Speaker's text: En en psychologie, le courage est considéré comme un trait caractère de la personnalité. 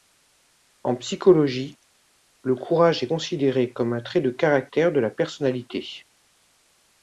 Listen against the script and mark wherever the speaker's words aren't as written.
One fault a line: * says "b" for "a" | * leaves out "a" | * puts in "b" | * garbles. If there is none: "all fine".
* leaves out "en"
* puts in "de"